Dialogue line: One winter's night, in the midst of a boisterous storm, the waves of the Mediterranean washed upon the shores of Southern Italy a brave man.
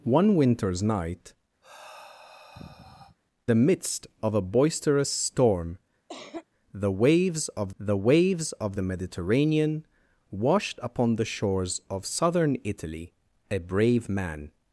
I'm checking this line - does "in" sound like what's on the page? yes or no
no